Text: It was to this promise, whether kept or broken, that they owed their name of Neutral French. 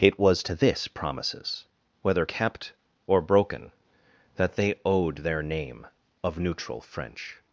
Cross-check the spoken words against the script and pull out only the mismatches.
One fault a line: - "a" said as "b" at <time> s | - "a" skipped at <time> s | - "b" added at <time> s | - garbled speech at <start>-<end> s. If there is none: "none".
- "promise" said as "promises" at 0.9 s